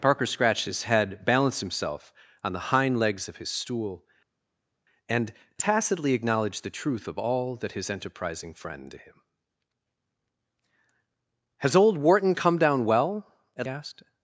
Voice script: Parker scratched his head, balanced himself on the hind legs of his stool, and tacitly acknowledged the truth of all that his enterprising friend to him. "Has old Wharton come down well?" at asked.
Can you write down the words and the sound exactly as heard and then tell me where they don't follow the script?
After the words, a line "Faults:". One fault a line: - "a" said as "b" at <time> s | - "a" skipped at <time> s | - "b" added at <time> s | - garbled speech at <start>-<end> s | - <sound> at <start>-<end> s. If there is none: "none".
Parker scratched his head, balanced himself on the hind legs of his stool, and tacitly acknowledged the truth of all that his enterprising friend to him. "Has old Wharton come down well?" at asked.
Faults:
none